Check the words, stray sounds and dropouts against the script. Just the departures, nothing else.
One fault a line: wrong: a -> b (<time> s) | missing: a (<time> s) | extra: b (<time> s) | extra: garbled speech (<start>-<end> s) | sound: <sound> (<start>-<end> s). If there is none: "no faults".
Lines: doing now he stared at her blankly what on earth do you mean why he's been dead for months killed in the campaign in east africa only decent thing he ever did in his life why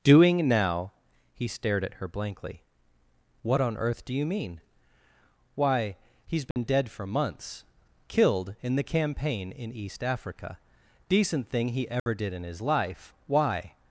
sound: dropout (6.5-6.6 s)
missing: only (10.6 s)
sound: dropout (12.0-12.1 s)